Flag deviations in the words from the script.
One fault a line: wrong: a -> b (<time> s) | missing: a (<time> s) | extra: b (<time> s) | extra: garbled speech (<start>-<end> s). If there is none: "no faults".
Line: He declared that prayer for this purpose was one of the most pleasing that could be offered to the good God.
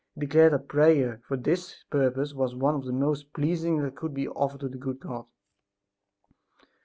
no faults